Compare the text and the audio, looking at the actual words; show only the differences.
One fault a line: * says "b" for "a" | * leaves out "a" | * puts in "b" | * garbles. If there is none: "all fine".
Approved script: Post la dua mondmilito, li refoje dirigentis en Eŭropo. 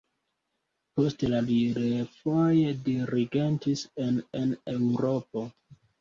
* leaves out "dua mondmilito"
* puts in "en"